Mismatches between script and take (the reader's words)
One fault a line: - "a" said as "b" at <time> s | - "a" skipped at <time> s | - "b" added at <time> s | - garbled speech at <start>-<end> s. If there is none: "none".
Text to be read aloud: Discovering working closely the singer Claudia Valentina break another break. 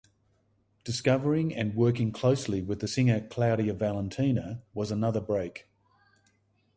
- "and" added at 1.6 s
- "with" added at 2.6 s
- "break" said as "was" at 4.7 s